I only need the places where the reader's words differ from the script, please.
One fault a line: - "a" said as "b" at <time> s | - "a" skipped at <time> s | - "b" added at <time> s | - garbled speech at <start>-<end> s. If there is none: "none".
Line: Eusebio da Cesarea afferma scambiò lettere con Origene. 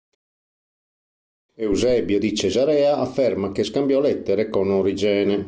- "da" said as "di" at 2.2 s
- "che" added at 3.5 s